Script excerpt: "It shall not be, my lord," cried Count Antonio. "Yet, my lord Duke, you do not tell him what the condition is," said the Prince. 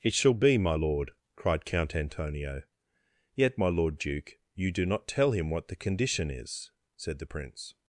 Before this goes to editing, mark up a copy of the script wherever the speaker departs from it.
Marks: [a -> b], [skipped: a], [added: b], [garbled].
"It shall [skipped: not] be, my lord," cried Count Antonio. "Yet, my lord Duke, you do not tell him what the condition is," said the Prince.